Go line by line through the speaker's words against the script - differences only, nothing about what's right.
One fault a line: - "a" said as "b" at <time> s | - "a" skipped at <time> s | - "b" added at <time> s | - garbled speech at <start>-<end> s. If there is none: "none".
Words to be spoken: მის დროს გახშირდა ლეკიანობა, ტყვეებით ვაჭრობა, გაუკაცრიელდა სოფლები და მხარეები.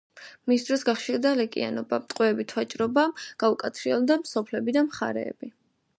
none